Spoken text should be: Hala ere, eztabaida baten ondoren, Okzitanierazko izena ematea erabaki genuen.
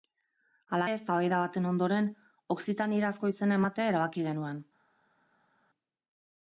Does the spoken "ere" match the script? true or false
false